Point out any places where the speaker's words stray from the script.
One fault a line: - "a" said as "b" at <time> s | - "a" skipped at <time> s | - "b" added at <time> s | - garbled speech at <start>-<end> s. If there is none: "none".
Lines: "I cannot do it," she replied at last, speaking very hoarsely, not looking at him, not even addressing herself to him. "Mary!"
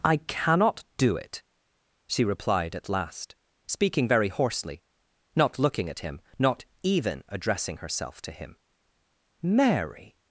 none